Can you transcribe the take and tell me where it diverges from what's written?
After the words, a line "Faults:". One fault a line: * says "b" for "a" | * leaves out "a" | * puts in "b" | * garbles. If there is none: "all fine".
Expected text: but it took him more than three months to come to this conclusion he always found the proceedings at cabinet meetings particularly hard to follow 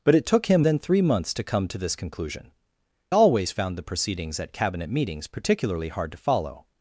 but it took him than three months to come to this conclusion always found the proceedings at cabinet meetings particularly hard to follow
Faults:
* leaves out "more"
* leaves out "he"